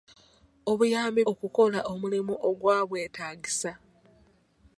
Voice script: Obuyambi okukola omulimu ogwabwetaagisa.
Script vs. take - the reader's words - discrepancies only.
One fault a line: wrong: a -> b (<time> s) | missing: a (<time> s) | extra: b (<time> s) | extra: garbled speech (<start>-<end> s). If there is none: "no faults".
no faults